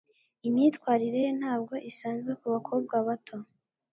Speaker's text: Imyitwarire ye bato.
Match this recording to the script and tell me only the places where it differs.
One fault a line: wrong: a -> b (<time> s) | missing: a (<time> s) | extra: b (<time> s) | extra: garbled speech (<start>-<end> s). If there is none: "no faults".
extra: ntabwo isanzwe kubakobwa (1.4 s)